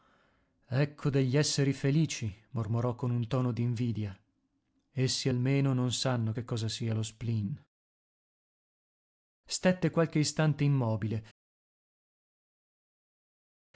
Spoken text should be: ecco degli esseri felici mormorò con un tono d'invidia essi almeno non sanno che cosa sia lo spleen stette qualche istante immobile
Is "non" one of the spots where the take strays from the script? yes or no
no